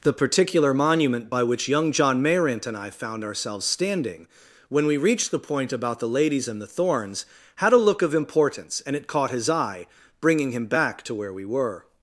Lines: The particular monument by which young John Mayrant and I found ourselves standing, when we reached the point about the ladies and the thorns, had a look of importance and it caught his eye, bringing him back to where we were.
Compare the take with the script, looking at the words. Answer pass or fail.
pass